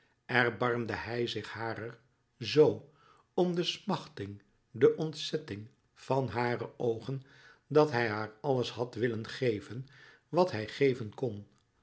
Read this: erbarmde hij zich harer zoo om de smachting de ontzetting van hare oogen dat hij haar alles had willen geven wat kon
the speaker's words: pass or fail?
fail